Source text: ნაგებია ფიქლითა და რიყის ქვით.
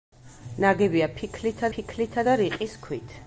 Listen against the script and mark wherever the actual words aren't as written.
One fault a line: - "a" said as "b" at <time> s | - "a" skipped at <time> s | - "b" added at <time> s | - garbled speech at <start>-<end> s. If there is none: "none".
- "ფიქლითა" added at 1.7 s